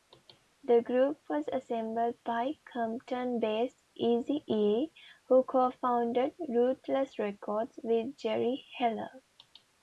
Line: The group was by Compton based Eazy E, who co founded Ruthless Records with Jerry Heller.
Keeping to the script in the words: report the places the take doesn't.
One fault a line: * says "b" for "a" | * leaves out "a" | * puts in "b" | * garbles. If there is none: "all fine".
* puts in "assembled"